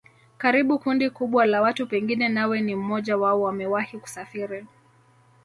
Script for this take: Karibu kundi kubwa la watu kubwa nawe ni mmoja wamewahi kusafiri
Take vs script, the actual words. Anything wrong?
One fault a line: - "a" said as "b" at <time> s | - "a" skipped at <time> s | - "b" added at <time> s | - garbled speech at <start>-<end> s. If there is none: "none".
- "kubwa" said as "pengine" at 1.9 s
- "wao" added at 3.2 s